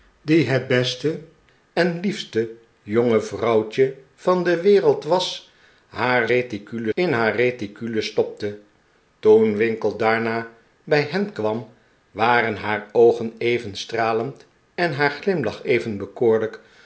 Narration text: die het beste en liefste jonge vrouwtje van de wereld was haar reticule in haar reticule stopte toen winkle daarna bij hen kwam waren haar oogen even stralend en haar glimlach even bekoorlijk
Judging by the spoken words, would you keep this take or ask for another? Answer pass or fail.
pass